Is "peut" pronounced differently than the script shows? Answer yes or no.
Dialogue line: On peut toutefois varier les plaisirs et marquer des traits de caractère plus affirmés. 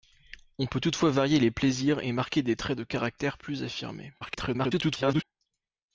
no